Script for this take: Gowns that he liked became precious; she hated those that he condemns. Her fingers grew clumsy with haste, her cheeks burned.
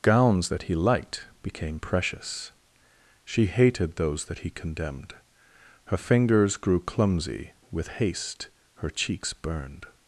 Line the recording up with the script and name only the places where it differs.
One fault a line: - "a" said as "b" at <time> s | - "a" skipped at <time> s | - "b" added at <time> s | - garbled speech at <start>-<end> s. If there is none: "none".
- "condemns" said as "condemned" at 4.5 s